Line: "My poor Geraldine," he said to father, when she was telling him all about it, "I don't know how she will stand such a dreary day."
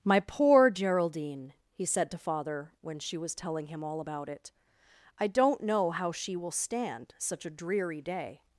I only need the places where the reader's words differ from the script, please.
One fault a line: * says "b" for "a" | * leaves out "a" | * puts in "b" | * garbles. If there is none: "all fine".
all fine